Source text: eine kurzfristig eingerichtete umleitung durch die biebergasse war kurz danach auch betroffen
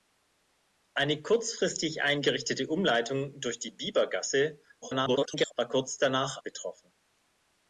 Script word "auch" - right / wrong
wrong